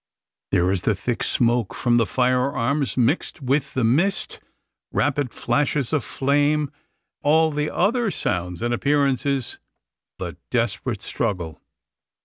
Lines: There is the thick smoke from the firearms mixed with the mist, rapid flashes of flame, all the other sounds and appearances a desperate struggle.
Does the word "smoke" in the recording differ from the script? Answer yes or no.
no